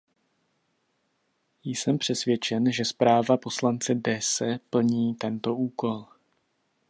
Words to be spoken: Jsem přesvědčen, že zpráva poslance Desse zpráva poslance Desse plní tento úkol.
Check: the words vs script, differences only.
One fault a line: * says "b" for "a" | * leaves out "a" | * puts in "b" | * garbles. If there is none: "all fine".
* leaves out "zpráva poslance Desse"